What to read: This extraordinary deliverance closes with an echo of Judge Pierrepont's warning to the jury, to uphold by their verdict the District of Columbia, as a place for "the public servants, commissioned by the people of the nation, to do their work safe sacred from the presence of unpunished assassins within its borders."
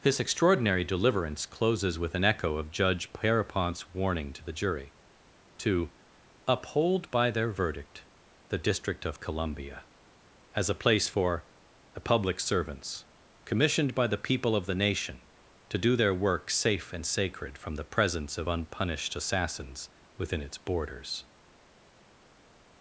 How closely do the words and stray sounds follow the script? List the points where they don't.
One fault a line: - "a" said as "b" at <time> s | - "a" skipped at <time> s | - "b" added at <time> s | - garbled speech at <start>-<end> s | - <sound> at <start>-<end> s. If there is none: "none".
- "and" added at 16.9 s